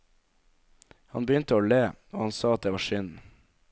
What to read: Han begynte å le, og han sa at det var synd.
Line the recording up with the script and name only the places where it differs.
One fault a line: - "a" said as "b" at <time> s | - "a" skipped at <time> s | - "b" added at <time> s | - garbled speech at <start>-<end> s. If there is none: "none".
none